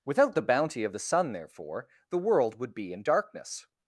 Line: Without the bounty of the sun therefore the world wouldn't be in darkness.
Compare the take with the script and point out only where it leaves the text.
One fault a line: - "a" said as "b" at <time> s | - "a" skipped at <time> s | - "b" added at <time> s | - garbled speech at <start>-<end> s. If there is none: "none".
- "wouldn't" said as "would" at 2.6 s